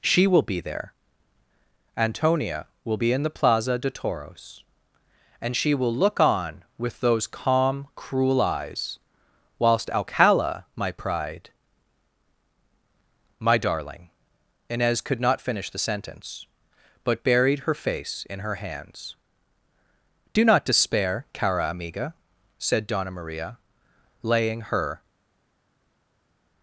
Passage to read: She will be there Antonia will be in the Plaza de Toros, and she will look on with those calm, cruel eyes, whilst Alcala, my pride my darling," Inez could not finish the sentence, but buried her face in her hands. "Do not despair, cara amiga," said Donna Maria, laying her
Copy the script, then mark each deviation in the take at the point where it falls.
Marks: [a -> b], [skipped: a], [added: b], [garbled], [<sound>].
She will be there Antonia will be in the Plaza de Toros, and she will look on with those calm, cruel eyes, whilst Alcala, my pride my darling," Inez could not finish the sentence, but buried her face in her hands. "Do not despair, cara amiga," said Donna Maria, laying her